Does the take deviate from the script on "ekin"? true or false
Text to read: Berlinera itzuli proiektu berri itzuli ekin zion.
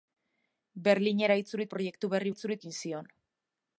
false